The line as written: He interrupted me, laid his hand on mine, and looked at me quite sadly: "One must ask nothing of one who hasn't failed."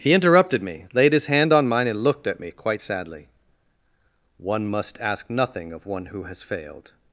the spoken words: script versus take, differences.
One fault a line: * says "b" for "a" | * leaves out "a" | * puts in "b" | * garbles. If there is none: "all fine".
* says "has" for "hasn't"